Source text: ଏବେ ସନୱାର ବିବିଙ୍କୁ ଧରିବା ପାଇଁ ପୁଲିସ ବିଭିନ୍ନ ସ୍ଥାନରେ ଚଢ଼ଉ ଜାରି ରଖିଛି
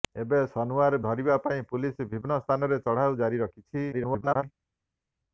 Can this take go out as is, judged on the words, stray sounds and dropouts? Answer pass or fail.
fail